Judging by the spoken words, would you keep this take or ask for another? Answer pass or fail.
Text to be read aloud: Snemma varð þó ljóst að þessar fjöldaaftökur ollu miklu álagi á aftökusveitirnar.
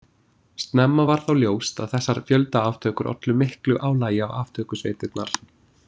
pass